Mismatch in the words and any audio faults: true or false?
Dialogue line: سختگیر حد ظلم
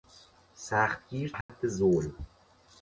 true